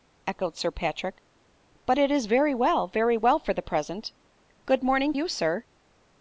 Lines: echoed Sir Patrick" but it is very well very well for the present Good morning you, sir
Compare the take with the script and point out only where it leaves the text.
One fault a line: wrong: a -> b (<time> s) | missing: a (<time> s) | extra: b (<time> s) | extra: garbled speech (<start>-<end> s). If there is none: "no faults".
no faults